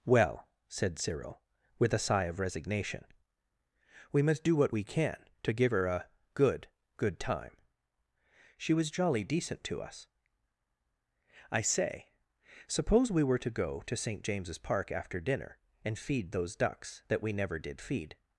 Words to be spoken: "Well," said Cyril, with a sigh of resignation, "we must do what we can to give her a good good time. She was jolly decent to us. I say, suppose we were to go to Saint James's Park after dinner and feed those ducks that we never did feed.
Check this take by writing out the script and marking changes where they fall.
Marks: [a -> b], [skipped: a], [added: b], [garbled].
"Well," said Cyril, with a sigh of resignation, "we must do what we can to give her a good good time. She was jolly decent to us. I say, suppose we were to go to Saint James's Park after dinner and feed those ducks that we never did feed.